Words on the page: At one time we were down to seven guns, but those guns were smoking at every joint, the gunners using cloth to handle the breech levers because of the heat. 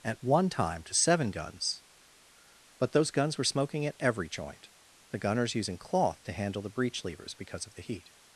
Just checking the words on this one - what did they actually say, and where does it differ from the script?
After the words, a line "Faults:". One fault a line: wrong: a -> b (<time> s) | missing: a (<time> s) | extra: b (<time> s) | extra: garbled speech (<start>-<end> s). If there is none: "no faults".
At one time to seven guns, but those guns were smoking at every joint, the gunners using cloth to handle the breech levers because of the heat.
Faults:
missing: we were down (0.8 s)